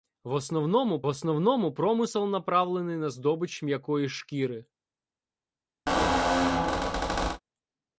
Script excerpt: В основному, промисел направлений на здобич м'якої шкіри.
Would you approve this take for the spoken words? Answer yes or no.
no